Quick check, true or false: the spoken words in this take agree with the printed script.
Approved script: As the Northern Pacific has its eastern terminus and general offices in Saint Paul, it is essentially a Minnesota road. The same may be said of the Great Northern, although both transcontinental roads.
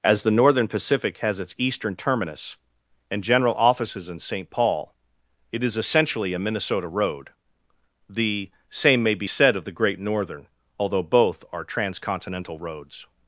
false